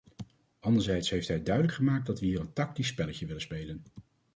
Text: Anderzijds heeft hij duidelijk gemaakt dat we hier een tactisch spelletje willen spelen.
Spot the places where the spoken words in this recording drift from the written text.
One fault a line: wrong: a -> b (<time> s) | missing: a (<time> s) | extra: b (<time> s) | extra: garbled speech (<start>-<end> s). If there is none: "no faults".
no faults